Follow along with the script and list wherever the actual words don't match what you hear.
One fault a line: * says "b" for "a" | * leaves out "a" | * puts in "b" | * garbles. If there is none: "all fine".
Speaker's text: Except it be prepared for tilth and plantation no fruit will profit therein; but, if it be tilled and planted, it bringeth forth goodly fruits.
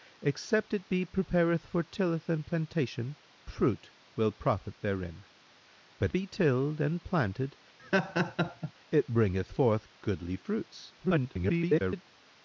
* leaves out "no"
* leaves out "if it"
* garbles